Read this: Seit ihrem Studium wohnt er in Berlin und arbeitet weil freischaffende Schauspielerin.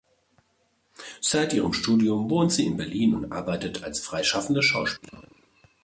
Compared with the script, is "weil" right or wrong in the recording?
wrong